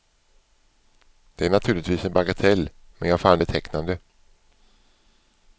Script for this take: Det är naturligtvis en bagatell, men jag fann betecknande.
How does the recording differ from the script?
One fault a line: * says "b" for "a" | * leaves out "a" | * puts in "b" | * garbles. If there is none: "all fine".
all fine